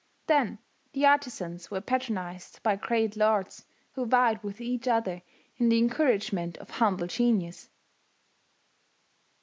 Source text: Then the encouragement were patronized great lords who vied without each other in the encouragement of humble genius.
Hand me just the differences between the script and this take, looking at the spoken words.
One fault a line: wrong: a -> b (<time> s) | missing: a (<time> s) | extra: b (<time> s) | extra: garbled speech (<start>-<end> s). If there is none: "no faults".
wrong: encouragement -> artizans (1.1 s)
extra: by (2.6 s)
wrong: without -> with (4.4 s)